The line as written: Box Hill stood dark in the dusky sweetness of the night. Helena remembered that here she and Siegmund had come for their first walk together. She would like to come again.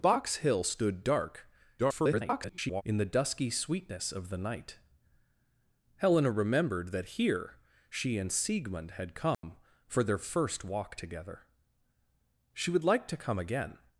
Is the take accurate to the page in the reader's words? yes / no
no